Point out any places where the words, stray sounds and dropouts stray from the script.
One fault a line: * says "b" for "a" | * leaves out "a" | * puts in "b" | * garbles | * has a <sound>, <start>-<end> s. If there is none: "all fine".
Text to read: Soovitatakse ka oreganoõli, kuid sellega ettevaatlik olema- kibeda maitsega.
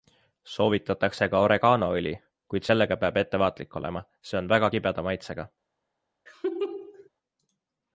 * puts in "peab"
* puts in "see on väga"
* has a laugh, 6.3-7.1 s